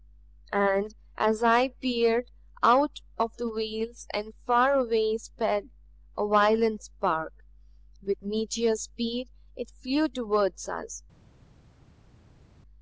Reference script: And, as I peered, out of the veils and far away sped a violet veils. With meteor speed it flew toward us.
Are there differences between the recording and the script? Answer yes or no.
yes